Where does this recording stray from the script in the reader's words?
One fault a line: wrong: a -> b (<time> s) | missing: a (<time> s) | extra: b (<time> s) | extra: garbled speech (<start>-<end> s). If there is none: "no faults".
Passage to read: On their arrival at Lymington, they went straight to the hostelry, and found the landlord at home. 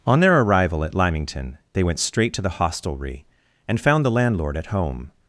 no faults